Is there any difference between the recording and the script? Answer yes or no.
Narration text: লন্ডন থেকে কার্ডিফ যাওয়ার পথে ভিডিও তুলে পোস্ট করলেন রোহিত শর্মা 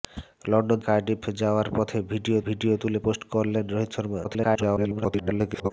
yes